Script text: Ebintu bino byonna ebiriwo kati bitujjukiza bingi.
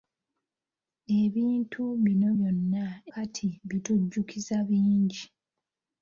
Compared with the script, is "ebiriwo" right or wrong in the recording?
wrong